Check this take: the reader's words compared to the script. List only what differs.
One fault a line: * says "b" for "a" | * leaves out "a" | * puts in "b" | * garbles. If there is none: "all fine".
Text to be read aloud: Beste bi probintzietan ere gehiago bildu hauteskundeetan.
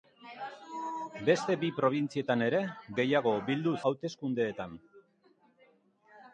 all fine